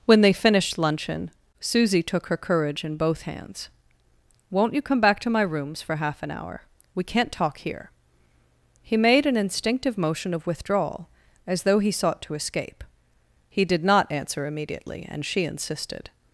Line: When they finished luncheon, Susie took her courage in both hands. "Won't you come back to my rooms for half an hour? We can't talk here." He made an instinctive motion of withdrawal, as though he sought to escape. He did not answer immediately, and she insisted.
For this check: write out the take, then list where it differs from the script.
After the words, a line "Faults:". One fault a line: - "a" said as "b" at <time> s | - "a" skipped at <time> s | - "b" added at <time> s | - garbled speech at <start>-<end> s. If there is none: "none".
When they finished luncheon, Susie took her courage in both hands. "Won't you come back to my rooms for half an hour? We can't talk here." He made an instinctive motion of withdrawal, as though he sought to escape. He did not answer immediately, and she insisted.
Faults:
none